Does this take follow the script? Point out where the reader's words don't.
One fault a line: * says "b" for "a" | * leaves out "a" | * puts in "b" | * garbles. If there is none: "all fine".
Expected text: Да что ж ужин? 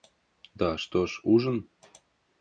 all fine